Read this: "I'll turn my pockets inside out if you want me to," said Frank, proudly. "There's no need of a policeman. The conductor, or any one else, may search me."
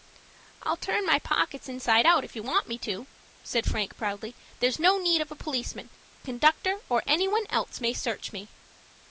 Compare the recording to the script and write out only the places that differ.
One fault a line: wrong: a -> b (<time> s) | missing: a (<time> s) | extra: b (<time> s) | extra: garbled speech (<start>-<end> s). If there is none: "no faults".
missing: The (5.9 s)